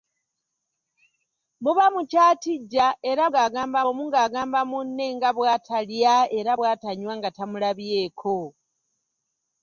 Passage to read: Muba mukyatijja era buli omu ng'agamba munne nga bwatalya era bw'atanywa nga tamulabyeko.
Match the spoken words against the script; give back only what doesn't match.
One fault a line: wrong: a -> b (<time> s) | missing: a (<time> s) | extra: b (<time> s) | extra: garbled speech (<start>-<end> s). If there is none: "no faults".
wrong: buli -> ng'agamba (3.3 s)